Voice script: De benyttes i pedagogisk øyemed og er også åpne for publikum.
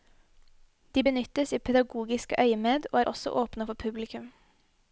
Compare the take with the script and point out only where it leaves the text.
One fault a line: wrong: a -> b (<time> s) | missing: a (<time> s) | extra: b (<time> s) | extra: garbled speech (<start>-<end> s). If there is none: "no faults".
no faults